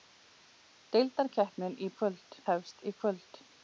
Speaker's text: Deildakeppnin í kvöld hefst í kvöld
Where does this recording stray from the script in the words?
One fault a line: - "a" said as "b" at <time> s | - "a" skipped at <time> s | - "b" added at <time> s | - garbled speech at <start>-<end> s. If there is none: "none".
none